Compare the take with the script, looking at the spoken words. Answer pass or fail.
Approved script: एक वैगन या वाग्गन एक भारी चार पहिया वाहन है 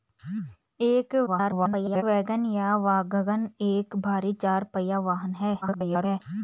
fail